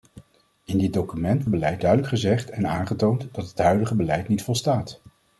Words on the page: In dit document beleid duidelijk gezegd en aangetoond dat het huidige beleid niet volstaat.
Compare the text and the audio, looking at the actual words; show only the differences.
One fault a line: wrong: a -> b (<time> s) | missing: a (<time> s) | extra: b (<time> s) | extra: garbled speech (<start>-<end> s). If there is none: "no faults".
no faults